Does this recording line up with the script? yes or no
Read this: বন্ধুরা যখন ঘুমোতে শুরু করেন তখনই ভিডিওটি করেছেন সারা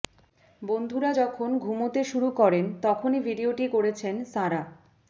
yes